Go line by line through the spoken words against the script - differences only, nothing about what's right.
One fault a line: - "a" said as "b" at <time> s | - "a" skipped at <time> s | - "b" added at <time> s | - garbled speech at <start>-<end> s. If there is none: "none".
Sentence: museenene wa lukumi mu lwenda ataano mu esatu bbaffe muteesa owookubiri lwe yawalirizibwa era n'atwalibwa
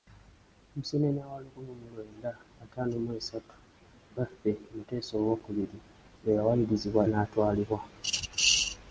- "era" skipped at 7.0 s